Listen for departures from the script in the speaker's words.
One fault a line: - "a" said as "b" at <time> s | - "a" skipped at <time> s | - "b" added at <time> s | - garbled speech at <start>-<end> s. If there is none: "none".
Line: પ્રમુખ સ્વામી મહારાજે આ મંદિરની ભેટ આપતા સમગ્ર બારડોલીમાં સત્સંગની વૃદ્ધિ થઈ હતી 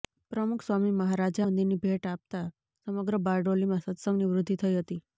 - "આ" skipped at 1.4 s